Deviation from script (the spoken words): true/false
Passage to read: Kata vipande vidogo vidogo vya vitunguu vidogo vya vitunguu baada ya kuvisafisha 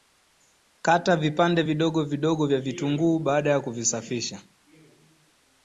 true